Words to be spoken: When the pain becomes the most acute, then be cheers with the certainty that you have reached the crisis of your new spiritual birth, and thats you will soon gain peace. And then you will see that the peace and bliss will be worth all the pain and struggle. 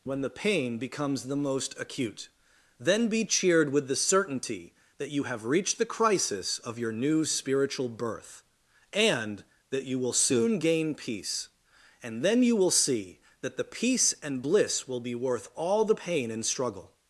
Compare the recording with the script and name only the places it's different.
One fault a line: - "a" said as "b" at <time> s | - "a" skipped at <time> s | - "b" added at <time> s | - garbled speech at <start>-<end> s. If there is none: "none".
- "cheers" said as "cheered" at 3.2 s
- "thats" said as "that" at 9.7 s